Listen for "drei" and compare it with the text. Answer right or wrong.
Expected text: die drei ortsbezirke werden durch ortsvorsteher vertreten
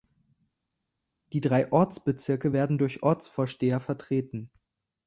right